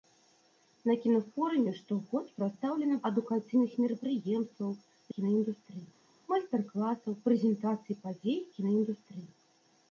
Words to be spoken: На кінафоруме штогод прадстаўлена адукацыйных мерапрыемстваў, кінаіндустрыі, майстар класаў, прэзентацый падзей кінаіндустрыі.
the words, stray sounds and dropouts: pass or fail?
pass